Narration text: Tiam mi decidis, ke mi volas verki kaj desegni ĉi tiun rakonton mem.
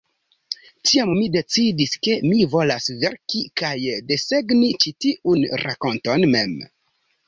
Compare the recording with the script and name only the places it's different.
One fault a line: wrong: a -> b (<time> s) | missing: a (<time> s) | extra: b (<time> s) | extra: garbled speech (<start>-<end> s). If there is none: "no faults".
no faults